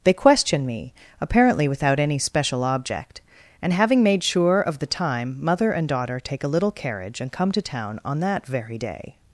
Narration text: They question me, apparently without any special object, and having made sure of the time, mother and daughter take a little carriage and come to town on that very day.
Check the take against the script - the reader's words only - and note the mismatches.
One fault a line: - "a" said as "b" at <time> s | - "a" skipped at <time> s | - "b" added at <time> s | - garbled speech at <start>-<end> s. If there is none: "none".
none